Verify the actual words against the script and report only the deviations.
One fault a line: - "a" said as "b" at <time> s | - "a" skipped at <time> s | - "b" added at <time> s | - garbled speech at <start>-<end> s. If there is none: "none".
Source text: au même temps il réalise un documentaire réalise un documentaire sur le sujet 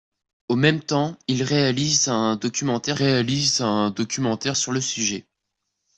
none